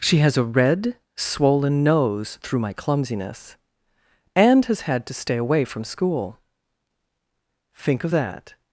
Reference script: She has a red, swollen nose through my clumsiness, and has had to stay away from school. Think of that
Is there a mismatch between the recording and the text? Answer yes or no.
no